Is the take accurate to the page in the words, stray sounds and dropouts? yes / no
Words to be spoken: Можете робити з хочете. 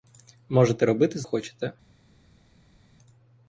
yes